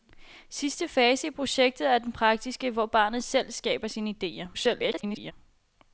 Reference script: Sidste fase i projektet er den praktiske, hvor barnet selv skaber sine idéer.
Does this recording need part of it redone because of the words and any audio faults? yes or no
yes